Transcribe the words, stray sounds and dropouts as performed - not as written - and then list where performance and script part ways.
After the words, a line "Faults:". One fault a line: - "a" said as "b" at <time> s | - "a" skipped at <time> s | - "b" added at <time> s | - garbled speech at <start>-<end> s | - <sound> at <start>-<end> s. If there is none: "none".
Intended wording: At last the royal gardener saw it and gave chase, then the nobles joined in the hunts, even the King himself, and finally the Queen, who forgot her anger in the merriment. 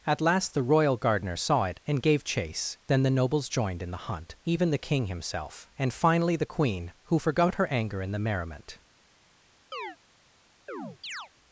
At last the royal gardener saw it and gave chase, then the nobles joined in the hunt, even the King himself, and finally the Queen, who forgot her anger in the merriment.
Faults:
- "hunts" said as "hunt" at 4.1 s
- chirp at 9.7-10.0 s
- chirp at 10.7-11.3 s